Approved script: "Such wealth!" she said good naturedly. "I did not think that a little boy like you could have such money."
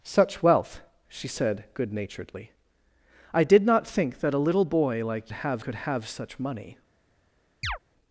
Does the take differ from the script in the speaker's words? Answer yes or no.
yes